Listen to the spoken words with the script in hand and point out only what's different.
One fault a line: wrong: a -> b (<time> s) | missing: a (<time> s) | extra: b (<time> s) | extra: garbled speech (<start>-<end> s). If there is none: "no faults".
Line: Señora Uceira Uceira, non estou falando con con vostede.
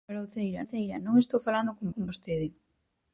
no faults